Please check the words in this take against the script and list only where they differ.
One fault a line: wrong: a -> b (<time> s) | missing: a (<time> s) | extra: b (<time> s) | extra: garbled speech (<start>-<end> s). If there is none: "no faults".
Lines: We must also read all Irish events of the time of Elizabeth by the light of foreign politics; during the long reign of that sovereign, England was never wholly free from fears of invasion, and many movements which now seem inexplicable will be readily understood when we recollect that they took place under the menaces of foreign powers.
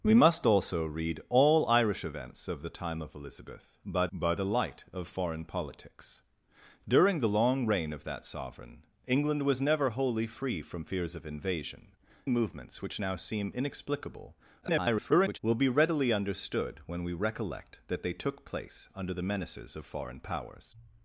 extra: by (4.1 s)
missing: and many (11.9 s)
extra: garbled speech (14.6-15.4 s)